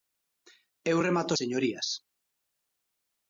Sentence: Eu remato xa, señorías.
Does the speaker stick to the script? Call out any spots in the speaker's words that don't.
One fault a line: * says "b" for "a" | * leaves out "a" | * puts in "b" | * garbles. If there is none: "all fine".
* leaves out "xa"